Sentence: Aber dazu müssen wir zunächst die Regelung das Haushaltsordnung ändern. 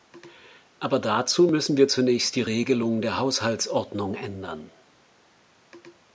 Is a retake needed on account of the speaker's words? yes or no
yes